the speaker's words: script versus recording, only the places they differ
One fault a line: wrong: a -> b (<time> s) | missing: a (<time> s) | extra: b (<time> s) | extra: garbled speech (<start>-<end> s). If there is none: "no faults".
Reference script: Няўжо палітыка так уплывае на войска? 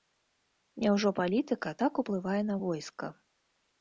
no faults